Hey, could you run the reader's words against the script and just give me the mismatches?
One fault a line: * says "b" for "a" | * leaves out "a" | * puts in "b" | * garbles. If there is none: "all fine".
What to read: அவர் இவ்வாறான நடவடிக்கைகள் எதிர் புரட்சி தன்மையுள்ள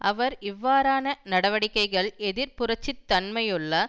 all fine